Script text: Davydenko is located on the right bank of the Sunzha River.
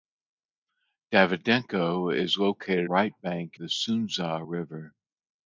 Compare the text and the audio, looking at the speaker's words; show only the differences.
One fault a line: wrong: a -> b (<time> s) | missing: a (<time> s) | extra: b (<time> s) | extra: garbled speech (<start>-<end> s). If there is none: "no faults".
missing: on the (2.9 s)
missing: of (3.6 s)